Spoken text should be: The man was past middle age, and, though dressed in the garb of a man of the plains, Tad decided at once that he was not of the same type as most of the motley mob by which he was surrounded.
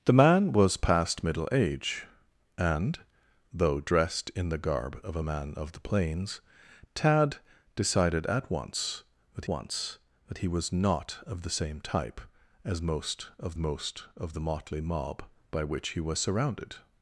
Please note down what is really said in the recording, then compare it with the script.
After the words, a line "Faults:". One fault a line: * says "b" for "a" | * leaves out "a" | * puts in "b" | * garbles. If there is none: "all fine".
The man was past middle age, and, though dressed in the garb of a man of the plains, Tad decided at once that once that he was not of the same type as most of most of the motley mob by which he was surrounded.
Faults:
* puts in "once that"
* puts in "most of"